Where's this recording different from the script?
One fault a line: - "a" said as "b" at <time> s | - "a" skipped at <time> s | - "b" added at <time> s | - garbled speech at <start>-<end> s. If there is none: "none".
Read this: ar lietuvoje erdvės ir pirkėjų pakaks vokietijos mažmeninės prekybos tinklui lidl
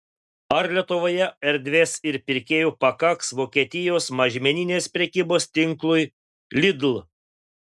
none